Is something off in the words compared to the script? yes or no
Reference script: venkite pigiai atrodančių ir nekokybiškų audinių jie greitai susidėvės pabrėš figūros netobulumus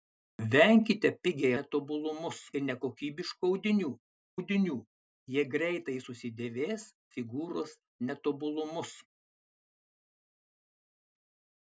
yes